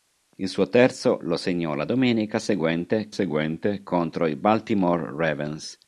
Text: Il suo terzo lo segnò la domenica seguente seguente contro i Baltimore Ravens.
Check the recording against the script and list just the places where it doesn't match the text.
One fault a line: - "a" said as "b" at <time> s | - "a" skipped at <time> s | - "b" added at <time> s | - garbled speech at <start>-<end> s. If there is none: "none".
none